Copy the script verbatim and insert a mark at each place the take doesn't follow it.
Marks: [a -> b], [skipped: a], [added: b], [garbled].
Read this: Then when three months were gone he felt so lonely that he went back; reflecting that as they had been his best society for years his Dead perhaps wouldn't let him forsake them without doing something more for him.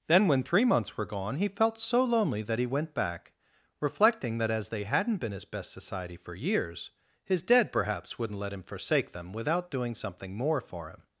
Then when three months were gone he felt so lonely that he went back; reflecting that as they [had -> hadn't] been his best society for years his Dead perhaps wouldn't let him forsake them without doing something more for him.